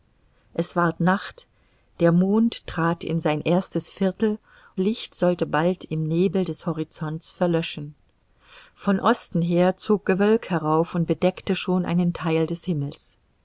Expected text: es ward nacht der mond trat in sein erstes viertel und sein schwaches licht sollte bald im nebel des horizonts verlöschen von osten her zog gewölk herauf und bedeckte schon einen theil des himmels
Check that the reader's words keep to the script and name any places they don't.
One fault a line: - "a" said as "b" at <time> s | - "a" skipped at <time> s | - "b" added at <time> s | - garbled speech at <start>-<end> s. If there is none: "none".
- "und sein schwaches" skipped at 4.4 s